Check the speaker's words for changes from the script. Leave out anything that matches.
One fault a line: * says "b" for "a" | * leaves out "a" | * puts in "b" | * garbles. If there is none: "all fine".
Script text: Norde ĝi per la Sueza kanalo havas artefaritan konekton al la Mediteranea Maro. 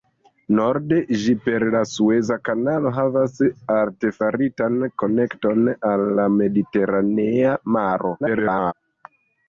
* garbles